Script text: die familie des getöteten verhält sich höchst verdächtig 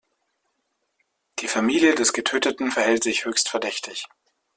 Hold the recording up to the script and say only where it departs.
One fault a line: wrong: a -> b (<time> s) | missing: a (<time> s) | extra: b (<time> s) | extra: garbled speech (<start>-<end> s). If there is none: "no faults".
no faults